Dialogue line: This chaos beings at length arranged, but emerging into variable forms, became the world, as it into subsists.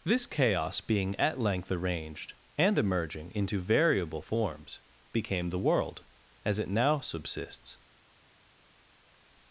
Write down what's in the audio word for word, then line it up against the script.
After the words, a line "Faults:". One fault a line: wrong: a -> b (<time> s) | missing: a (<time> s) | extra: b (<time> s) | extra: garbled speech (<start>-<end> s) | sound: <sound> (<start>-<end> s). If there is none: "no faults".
This chaos being at length arranged, and emerging into variable forms, became the world, as it now subsists.
Faults:
wrong: beings -> being (0.8 s)
wrong: but -> and (2.6 s)
wrong: into -> now (6.7 s)